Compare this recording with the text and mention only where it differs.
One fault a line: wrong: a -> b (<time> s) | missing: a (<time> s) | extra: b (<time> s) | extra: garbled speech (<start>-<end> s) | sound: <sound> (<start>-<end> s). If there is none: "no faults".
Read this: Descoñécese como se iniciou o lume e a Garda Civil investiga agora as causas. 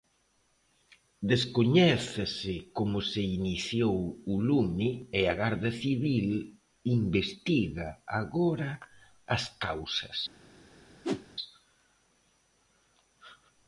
sound: whoosh (11.0-11.3 s)